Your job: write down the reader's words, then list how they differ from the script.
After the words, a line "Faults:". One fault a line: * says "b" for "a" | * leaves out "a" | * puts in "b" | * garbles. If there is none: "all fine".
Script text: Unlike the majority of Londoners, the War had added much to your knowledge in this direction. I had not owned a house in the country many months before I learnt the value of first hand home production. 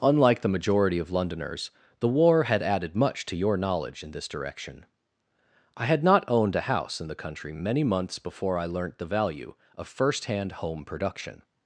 Unlike the majority of Londoners, the War had added much to your knowledge in this direction. I had not owned a house in the country many months before I learnt the value of first hand home production.
Faults:
all fine